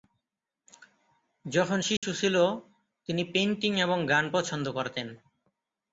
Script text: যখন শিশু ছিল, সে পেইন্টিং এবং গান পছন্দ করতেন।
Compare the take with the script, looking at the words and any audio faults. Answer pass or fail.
fail